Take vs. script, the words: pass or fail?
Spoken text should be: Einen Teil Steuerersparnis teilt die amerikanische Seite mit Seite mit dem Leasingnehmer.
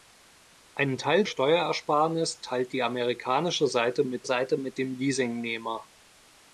pass